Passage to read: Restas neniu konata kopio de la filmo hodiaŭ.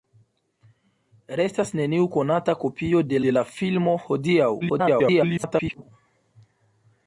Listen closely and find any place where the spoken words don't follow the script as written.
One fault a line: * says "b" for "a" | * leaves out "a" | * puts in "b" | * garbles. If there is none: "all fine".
* puts in "de"
* garbles